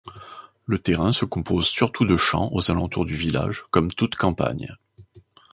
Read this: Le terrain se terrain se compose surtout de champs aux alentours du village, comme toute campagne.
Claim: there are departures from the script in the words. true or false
true